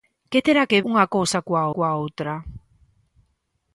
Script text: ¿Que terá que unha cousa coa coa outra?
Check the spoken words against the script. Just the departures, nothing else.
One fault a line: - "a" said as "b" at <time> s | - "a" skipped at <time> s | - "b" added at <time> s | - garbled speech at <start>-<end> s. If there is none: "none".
none